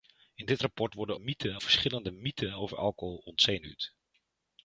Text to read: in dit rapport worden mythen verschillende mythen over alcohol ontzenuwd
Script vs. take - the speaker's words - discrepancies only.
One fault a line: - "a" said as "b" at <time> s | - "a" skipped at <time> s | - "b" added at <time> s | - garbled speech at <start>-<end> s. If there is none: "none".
none